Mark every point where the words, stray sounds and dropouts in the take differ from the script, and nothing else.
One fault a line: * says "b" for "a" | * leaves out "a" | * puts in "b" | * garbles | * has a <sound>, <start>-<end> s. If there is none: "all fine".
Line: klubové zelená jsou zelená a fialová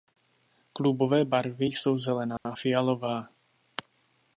* says "barvy" for "zelená"
* has a dropout, 2.4-2.5 s